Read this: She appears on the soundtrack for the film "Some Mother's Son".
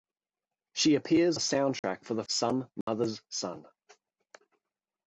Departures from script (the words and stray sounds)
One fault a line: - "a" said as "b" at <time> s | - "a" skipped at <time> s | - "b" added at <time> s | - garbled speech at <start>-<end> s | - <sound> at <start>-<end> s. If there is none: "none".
- "on" skipped at 1.4 s
- dropout at 1.8-1.8 s
- "film" skipped at 2.2 s
- dropout at 2.8-2.9 s